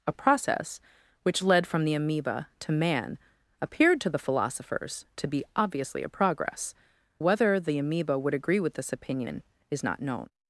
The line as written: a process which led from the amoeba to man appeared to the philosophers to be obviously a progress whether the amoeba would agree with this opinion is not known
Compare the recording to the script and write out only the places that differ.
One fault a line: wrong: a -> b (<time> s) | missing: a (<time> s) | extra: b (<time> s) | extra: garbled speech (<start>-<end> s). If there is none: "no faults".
no faults